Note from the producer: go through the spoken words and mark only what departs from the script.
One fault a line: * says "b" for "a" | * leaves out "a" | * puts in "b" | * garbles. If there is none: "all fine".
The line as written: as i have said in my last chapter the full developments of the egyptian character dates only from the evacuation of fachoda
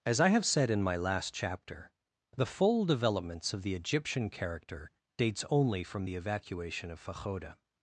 all fine